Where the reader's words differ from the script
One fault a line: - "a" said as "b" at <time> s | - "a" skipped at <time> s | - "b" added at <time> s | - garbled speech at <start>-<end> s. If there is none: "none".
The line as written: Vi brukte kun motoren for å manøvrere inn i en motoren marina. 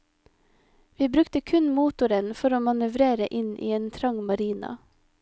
- "motoren" said as "trang" at 4.0 s